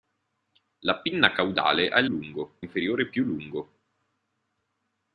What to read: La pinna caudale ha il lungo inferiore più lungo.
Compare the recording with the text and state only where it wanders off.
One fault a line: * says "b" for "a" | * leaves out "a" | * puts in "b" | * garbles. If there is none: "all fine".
all fine